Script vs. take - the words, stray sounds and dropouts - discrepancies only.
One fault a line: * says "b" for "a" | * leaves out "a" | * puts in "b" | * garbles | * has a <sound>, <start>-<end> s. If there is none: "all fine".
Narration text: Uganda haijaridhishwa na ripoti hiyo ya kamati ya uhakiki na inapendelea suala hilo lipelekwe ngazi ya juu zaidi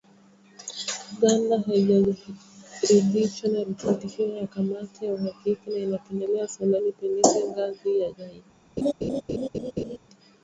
* leaves out "hilo"
* leaves out "juu"
* has a laugh, 8.8-10.0 s